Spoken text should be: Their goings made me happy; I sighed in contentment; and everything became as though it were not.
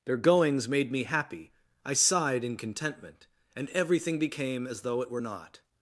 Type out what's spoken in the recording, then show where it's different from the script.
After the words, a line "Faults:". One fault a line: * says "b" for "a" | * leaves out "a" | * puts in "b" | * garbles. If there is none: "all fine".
Their goings made me happy; I sighed in contentment; and everything became as though it were not.
Faults:
all fine